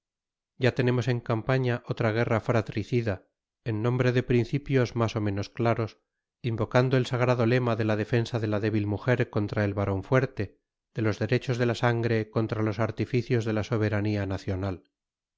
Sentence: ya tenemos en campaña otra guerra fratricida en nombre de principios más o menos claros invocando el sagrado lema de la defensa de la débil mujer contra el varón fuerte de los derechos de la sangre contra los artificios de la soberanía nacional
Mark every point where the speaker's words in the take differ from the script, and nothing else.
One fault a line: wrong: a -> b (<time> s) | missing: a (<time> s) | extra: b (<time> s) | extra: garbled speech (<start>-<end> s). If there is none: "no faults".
no faults